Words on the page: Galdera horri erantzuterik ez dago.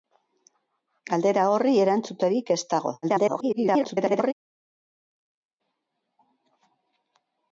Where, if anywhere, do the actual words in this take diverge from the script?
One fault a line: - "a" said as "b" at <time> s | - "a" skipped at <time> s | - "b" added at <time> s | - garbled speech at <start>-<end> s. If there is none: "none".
- garbled speech at 3.0-4.3 s